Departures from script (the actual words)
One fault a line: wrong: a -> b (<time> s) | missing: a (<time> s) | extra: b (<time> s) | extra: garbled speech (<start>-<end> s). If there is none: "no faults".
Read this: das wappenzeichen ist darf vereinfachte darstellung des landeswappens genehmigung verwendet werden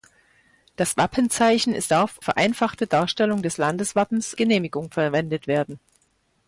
no faults